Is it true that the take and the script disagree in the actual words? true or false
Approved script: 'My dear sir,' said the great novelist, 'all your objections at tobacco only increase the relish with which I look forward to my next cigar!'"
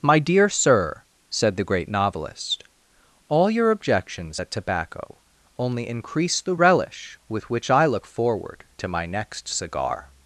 false